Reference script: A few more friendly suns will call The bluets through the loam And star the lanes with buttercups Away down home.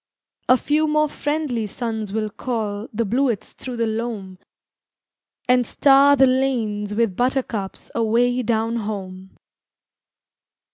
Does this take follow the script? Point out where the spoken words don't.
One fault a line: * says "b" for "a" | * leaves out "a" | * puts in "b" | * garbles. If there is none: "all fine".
all fine